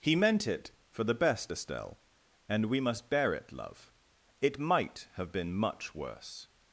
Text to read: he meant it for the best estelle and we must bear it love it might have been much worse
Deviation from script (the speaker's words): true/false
false